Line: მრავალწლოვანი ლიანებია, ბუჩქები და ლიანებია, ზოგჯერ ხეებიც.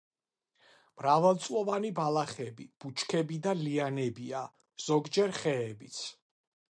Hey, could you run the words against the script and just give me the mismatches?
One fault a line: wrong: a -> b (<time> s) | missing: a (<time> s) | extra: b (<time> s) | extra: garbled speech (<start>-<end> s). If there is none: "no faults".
wrong: ლიანებია -> ბალახები (2.0 s)